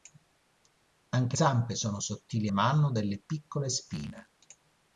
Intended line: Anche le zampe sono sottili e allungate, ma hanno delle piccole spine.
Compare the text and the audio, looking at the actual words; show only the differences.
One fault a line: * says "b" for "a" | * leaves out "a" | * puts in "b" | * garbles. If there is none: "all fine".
* leaves out "le"
* leaves out "allungate"